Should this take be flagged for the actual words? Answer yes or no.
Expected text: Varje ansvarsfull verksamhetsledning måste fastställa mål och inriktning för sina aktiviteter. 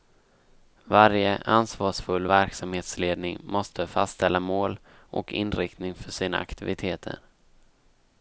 no